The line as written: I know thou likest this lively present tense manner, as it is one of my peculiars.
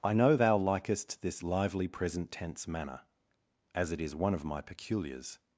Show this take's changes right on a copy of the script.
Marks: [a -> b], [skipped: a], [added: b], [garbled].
I know thou likest this lively present tense manner, as it is one of my peculiars.